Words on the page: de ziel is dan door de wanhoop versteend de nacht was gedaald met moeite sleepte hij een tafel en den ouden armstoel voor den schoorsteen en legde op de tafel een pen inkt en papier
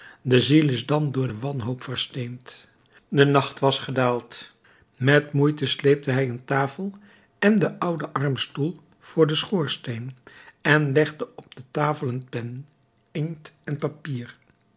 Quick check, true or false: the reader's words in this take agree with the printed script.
true